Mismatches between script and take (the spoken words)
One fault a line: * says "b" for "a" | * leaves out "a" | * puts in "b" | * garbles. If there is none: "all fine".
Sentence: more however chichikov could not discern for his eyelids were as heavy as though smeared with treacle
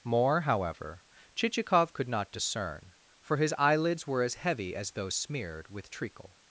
all fine